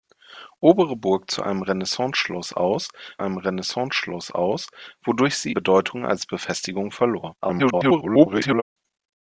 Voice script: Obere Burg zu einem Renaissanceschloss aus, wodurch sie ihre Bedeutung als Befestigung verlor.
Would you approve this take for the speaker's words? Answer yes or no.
no